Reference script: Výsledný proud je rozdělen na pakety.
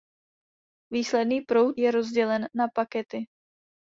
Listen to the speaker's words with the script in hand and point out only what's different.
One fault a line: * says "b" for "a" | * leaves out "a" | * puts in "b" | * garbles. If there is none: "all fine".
all fine